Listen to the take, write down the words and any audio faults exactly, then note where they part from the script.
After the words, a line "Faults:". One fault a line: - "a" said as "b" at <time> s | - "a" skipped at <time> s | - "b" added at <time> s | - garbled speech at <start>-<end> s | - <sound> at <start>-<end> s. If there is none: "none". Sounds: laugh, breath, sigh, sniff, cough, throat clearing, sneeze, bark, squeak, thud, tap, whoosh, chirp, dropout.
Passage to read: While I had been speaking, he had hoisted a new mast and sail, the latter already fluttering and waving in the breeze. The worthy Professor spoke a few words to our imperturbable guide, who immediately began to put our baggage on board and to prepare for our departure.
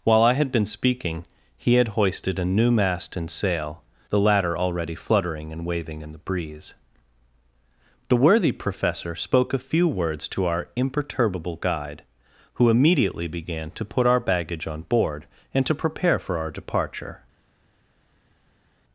While I had been speaking, he had hoisted a new mast and sail, the latter already fluttering and waving in the breeze. The worthy Professor spoke a few words to our imperturbable guide, who immediately began to put our baggage on board and to prepare for our departure.
Faults:
none